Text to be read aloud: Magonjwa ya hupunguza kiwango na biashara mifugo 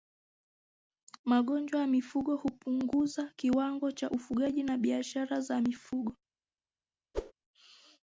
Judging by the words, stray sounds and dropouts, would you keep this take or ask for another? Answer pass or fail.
fail